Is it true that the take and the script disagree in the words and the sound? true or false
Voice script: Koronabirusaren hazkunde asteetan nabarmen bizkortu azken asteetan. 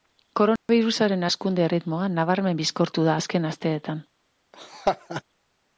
true